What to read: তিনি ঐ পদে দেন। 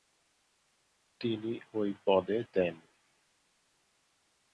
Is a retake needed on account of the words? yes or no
no